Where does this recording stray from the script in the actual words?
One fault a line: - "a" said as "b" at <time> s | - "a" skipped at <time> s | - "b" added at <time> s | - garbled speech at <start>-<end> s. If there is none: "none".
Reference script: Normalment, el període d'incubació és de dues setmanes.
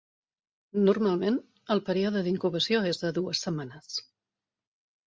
none